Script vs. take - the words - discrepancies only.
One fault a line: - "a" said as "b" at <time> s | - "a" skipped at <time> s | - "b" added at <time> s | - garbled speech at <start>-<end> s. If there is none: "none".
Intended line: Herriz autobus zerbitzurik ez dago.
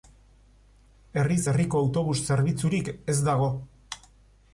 - "herriko" added at 1.5 s